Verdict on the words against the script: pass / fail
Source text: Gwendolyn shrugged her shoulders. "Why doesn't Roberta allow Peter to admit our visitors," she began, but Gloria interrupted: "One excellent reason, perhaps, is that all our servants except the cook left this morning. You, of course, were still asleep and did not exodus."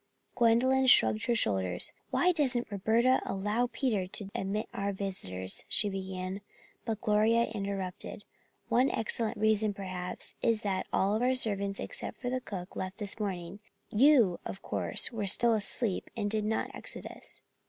pass